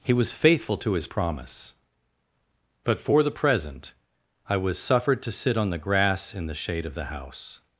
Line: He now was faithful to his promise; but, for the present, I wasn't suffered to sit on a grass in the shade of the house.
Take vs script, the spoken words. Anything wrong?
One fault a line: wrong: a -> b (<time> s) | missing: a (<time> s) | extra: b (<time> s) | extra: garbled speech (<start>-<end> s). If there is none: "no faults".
missing: now (0.1 s)
wrong: wasn't -> was (4.6 s)
wrong: a -> the (5.7 s)